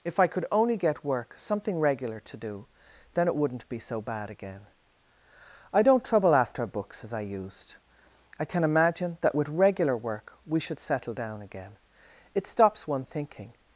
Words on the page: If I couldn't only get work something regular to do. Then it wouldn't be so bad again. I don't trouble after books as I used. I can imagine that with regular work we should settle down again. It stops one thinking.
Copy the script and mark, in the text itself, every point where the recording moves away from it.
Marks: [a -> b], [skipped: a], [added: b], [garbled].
If I [couldn't -> could] only get work something regular to do. Then it wouldn't be so bad again. I don't trouble after books as I used. I can imagine that with regular work we should settle down again. It stops one thinking.